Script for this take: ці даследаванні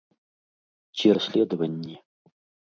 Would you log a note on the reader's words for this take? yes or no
no